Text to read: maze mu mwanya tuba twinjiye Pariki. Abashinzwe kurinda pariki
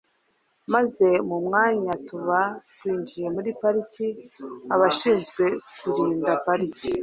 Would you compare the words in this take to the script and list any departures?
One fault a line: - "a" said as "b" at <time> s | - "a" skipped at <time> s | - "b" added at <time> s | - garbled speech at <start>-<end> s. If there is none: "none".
- "muri" added at 3.3 s